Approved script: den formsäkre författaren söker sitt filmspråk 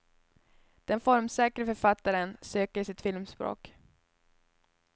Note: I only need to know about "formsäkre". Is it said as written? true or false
true